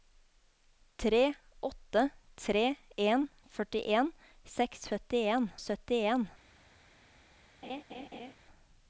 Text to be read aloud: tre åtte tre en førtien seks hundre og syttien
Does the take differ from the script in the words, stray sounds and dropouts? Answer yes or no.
yes